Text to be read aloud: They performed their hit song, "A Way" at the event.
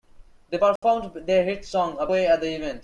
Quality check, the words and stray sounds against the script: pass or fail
fail